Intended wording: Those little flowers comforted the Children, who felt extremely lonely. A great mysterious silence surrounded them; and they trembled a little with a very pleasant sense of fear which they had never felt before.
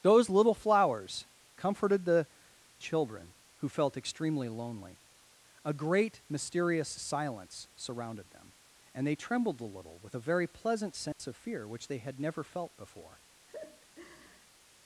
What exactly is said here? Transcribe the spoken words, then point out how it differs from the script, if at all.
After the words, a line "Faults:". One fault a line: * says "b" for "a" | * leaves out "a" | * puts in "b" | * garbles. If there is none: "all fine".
Those little flowers comforted the Children, who felt extremely lonely. A great mysterious silence surrounded them; and they trembled a little with a very pleasant sense of fear which they had never felt before.
Faults:
all fine